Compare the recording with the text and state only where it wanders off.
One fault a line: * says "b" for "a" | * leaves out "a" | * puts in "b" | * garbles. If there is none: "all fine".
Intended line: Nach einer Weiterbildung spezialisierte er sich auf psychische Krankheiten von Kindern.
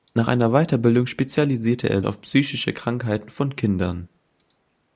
* leaves out "sich"